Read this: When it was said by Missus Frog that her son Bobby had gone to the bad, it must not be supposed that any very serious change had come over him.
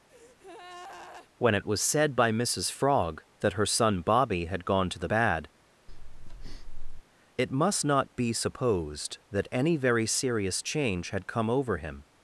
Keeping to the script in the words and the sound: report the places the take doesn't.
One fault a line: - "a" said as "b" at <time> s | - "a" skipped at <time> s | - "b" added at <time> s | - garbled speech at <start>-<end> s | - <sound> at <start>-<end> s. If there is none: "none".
- breath at 0.1-1.3 s
- breath at 5.9-7.0 s